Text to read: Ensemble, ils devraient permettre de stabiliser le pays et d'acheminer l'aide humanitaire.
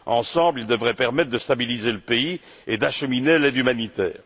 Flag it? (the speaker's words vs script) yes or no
no